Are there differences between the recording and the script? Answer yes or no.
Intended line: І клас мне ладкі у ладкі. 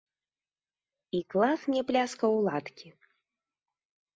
yes